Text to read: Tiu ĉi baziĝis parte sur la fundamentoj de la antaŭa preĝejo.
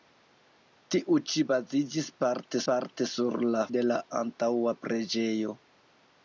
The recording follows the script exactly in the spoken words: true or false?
false